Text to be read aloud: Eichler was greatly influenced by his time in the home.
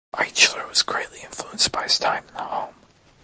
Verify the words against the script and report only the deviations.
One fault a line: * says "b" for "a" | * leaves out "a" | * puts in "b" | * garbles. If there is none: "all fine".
all fine